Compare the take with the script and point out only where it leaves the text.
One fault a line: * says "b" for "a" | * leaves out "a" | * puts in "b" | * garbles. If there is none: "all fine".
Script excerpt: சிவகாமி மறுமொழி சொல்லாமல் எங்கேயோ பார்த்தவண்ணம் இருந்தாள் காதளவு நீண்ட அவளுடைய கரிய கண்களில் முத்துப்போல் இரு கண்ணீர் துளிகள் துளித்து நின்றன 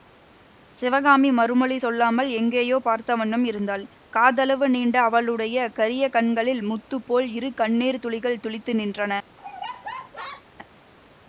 all fine